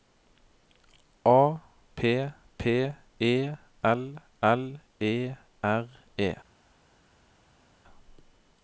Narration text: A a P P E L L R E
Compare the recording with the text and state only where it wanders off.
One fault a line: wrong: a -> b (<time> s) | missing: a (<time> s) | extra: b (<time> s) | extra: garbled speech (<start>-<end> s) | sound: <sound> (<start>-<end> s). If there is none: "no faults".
missing: a (1.6 s)
extra: E (5.0 s)